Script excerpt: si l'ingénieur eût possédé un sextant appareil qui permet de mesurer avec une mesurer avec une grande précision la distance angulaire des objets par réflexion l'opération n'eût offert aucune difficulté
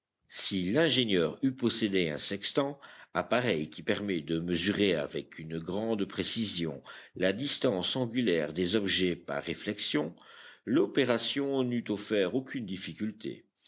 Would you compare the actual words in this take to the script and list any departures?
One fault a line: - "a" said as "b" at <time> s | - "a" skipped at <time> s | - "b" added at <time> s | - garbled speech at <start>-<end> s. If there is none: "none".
- "mesurer avec une" skipped at 5.6 s